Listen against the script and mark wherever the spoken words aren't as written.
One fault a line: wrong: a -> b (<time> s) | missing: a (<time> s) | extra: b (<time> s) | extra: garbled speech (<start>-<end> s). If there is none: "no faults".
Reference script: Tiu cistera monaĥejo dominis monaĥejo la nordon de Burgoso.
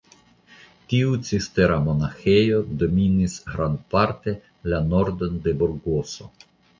wrong: monaĥejo -> grandparte (3.5 s)